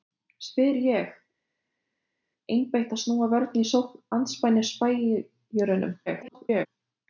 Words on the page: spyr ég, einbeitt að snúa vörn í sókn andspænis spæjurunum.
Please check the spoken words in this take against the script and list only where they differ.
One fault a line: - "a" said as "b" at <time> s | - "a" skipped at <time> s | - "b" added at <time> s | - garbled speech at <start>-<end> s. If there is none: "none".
- garbled speech at 6.1-6.7 s